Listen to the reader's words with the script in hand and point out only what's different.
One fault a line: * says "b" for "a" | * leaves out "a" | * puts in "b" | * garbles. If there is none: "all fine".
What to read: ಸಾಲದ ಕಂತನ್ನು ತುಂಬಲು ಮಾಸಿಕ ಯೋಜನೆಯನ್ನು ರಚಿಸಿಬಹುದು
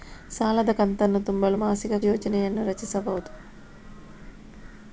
all fine